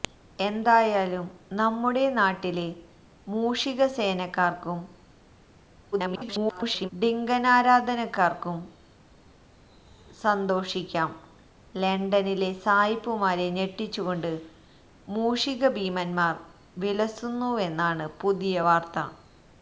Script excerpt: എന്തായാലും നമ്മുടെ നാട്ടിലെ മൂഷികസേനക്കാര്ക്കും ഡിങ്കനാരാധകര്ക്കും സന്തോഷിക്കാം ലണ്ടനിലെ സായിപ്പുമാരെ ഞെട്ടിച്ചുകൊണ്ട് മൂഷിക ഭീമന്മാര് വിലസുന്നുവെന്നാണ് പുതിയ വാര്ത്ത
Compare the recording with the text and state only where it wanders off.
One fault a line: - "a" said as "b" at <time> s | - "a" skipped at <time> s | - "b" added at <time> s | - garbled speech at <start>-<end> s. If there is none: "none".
- garbled speech at 5.9-6.9 s